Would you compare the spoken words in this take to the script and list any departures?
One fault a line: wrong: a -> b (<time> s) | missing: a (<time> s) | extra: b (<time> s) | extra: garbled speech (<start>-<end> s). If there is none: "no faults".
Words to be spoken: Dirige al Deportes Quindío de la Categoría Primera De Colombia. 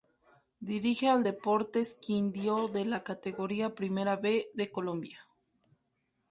extra: B (4.1 s)